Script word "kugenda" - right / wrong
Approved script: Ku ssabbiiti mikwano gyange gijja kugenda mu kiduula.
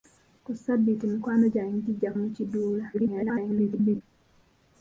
wrong